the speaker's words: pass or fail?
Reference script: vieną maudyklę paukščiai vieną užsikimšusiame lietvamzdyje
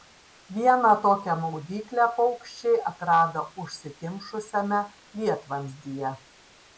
fail